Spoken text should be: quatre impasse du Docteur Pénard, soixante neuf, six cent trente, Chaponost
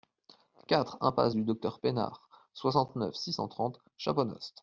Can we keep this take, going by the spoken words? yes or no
yes